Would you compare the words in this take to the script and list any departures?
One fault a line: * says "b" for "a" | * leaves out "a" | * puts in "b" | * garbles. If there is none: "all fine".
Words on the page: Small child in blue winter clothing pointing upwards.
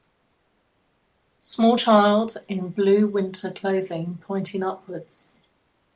all fine